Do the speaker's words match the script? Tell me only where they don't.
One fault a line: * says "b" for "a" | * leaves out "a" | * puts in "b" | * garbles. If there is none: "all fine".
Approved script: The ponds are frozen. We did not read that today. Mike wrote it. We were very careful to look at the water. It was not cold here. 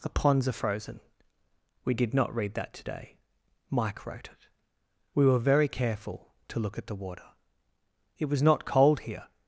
all fine